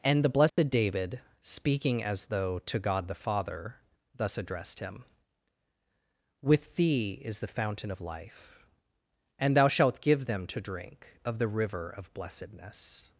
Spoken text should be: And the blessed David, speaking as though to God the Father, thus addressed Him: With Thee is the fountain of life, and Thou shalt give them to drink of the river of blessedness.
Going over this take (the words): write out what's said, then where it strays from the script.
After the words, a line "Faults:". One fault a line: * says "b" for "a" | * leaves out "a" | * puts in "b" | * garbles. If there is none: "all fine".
And the blessed David, speaking as though to God the Father, thus addressed Him: With Thee is the fountain of life, and Thou shalt give them to drink of the river of blessedness.
Faults:
all fine